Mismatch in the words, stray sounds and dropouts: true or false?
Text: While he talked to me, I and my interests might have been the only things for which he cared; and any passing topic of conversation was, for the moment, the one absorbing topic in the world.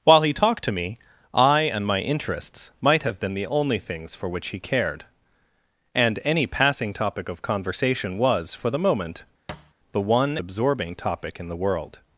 true